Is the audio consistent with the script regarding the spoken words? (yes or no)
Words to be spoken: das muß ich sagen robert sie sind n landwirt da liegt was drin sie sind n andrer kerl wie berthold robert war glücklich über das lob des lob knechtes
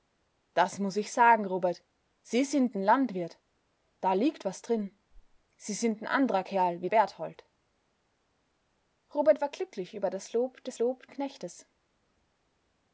yes